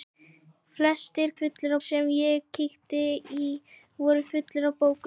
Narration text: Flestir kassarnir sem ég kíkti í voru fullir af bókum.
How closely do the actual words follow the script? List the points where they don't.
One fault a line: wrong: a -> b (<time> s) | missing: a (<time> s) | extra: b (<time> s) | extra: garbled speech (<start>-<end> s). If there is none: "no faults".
wrong: kassarnir -> fullir (1.4 s)